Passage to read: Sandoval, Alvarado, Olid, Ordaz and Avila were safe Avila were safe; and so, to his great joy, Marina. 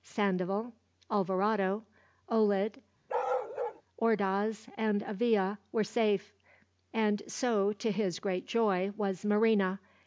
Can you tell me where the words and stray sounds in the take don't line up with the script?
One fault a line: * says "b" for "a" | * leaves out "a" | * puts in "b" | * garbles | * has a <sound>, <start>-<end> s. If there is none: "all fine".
* has a bark, 3.1-3.8 s
* leaves out "Avila were safe"
* puts in "was"